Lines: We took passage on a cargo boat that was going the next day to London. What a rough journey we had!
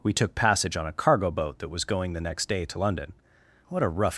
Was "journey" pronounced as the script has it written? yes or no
no